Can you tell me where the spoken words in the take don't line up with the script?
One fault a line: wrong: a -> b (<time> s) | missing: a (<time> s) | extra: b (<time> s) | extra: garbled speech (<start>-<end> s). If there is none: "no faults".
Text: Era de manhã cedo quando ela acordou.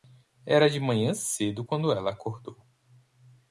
no faults